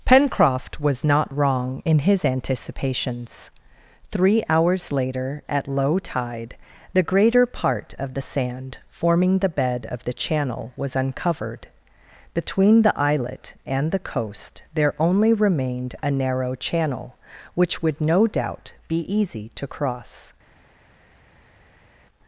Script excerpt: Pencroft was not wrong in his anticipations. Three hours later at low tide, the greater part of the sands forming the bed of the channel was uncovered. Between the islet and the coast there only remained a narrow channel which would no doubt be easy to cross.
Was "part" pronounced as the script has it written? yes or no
yes